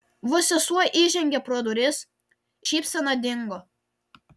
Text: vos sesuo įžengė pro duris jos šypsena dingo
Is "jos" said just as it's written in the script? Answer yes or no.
no